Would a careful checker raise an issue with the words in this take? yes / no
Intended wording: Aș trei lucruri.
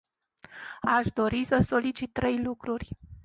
yes